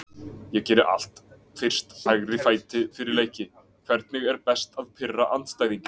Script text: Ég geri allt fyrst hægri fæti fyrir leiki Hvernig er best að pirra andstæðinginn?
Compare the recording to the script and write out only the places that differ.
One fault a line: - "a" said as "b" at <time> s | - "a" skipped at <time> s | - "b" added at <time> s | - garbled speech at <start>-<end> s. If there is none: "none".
none